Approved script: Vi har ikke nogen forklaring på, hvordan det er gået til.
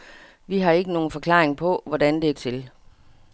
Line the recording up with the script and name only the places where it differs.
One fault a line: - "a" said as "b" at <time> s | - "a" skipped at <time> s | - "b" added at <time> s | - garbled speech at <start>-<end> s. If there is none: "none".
- "gået" skipped at 2.3 s